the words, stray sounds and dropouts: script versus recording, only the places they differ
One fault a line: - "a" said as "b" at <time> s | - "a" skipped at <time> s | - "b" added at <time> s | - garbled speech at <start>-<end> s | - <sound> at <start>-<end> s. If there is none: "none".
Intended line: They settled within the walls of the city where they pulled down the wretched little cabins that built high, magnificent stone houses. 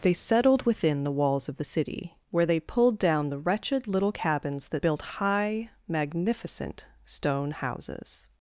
none